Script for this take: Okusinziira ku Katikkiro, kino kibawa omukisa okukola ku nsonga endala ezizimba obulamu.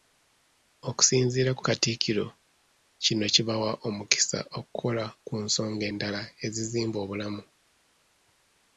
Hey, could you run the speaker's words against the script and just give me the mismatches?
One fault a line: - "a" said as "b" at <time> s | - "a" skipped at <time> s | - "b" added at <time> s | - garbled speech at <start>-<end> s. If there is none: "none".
none